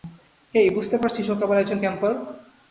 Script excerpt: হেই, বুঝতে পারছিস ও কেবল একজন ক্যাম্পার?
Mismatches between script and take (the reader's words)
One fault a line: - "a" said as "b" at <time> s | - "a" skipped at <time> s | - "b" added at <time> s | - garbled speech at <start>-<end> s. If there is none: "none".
none